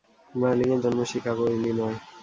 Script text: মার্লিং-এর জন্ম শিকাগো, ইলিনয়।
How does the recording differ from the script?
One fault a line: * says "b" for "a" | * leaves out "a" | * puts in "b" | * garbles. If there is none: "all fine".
all fine